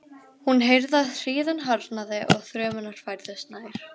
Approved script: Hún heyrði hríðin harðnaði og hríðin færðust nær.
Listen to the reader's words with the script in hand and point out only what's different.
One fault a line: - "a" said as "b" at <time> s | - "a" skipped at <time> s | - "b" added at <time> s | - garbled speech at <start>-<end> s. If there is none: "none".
- "að" added at 1.0 s
- "hríðin" said as "þrumurnar" at 2.5 s